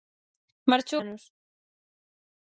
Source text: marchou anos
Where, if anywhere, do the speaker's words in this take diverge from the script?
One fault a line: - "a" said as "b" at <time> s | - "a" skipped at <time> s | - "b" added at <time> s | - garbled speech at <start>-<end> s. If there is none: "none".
none